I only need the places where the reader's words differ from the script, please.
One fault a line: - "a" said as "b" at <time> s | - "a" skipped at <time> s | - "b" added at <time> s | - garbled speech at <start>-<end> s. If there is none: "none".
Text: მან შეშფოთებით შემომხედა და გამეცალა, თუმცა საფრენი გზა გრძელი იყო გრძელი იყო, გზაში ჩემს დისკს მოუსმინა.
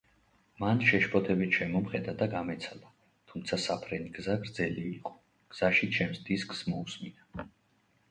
- "გრძელი იყო" skipped at 5.1 s